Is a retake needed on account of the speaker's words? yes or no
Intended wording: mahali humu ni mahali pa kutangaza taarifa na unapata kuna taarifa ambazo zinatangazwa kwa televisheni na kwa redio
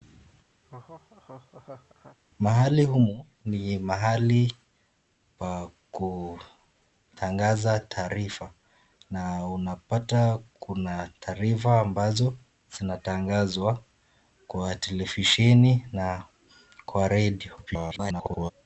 yes